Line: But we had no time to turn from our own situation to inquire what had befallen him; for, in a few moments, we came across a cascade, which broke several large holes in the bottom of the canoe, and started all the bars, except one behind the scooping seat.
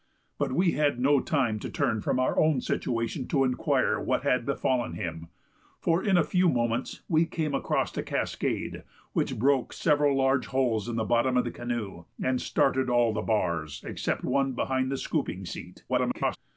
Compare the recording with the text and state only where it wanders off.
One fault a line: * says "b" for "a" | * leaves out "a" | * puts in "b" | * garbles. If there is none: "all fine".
* garbles